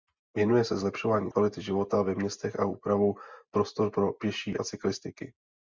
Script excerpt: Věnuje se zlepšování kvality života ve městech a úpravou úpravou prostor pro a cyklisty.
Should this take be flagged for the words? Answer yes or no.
yes